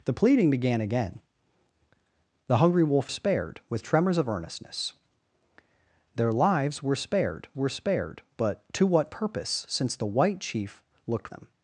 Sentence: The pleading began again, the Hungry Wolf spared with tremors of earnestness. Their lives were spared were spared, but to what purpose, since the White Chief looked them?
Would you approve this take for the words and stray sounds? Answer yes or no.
yes